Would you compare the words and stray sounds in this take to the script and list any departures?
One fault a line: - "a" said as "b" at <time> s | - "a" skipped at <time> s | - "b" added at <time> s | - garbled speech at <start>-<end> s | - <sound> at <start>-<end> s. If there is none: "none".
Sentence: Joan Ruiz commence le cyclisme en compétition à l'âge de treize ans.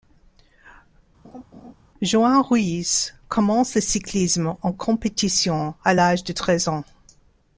- laugh at 1.2-1.7 s